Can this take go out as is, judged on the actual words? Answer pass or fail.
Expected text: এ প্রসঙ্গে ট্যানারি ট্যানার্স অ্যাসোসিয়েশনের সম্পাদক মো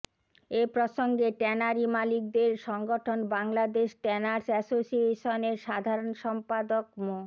fail